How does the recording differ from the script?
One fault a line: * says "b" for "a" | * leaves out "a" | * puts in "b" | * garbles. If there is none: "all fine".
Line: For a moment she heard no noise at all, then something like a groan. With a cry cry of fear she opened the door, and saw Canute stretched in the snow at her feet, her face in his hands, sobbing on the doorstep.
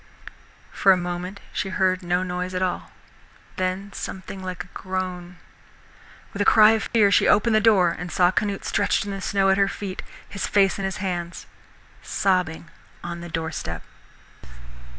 * leaves out "cry"
* says "his" for "her"